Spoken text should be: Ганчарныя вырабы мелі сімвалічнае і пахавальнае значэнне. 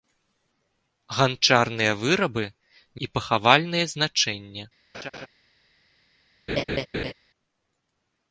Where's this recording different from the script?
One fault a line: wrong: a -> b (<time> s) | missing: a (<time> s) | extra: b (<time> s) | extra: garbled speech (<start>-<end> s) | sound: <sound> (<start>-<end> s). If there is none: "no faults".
missing: мелі сімвалічнае (2.5 s)
sound: laugh (4.9-5.3 s)
sound: laugh (6.5-7.1 s)